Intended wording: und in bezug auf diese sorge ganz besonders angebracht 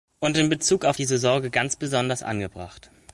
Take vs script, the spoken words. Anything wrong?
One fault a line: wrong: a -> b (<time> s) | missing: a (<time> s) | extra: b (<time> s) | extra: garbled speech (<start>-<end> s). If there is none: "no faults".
no faults